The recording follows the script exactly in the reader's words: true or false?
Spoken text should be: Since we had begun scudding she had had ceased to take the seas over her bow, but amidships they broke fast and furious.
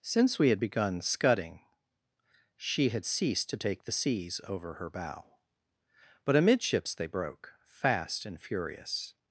false